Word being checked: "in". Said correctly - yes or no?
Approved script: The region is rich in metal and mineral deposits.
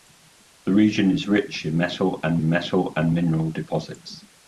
yes